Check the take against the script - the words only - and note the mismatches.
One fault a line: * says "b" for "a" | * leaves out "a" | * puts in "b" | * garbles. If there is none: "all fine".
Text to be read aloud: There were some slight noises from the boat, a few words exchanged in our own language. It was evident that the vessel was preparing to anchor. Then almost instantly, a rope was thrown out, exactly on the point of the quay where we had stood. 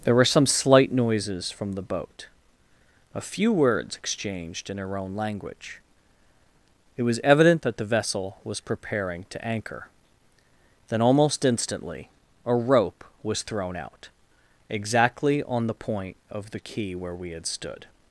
* says "her" for "our"